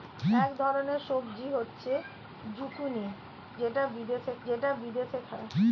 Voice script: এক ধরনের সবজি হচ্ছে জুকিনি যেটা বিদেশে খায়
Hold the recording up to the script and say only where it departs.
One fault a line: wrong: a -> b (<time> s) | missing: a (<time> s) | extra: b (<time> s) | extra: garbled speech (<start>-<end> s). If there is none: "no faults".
extra: যেটা বিদেশে (4.4 s)